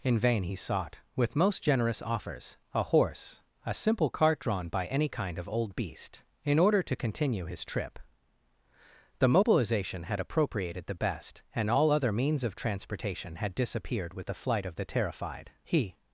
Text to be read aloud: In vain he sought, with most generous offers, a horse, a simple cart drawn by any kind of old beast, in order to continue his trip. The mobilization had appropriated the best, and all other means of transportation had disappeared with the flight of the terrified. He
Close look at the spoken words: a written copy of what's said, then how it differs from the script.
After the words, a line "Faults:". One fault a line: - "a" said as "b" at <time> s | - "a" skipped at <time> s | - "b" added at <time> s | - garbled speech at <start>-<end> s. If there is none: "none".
In vain he sought, with most generous offers, a horse, a simple cart drawn by any kind of old beast, in order to continue his trip. The mobilization had appropriated the best, and all other means of transportation had disappeared with the flight of the terrified. He
Faults:
none